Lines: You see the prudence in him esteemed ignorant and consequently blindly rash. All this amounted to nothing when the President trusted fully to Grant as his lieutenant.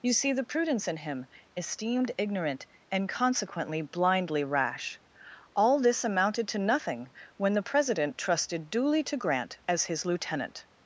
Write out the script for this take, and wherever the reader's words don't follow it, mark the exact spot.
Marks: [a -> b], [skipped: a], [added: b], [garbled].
You see the prudence in him esteemed ignorant and consequently blindly rash. All this amounted to nothing when the President trusted [fully -> duly] to Grant as his lieutenant.